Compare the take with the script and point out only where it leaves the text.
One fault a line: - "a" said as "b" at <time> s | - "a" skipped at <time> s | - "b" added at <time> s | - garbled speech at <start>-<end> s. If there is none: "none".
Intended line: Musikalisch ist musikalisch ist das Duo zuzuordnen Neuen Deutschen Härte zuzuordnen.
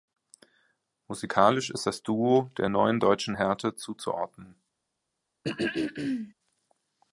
- "musikalisch ist" skipped at 1.9 s
- "zuzuordnen" said as "der" at 2.6 s